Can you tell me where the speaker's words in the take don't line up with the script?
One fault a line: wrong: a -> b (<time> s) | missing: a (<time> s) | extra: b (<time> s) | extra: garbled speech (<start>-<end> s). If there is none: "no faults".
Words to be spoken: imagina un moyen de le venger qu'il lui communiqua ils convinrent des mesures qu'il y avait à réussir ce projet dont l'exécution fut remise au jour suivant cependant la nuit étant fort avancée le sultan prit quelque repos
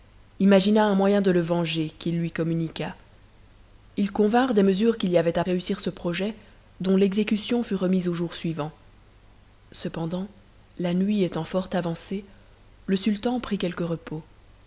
no faults